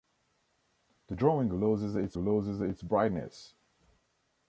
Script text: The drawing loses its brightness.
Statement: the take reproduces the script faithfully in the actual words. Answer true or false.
false